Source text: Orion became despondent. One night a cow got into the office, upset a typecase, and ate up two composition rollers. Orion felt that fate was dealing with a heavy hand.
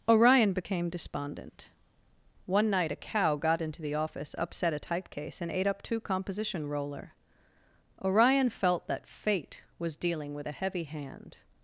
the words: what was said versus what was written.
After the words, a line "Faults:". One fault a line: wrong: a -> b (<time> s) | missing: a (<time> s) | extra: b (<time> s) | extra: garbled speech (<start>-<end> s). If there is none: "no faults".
Orion became despondent. One night a cow got into the office, upset a typecase, and ate up two composition roller. Orion felt that fate was dealing with a heavy hand.
Faults:
wrong: rollers -> roller (6.7 s)